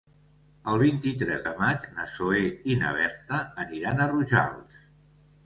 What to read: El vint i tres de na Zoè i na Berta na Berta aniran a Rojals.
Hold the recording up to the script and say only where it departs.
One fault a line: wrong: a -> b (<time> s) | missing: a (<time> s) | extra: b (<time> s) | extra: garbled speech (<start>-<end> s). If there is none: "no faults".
extra: maig (1.6 s)
missing: na Berta (3.4 s)